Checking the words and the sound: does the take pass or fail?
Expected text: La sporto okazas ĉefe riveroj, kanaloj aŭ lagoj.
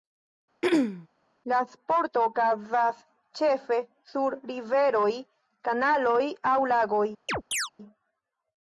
fail